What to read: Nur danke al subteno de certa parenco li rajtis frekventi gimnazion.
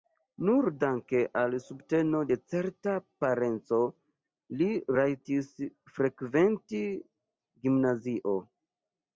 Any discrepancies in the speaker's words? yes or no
no